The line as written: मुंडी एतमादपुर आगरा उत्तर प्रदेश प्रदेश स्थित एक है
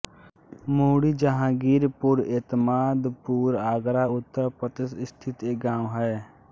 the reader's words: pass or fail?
fail